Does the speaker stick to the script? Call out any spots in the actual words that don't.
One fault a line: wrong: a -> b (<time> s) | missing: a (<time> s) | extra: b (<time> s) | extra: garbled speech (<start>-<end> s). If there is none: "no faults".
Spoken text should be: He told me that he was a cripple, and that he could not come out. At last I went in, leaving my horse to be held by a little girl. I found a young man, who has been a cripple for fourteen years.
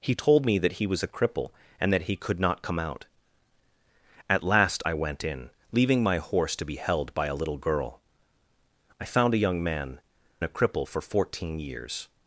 missing: who has been (10.0 s)